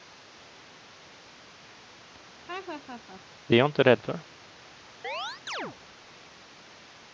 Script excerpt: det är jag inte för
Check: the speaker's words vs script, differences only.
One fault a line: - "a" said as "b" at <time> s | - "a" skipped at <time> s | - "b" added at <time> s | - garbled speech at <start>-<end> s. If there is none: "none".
- "rädd" added at 3.8 s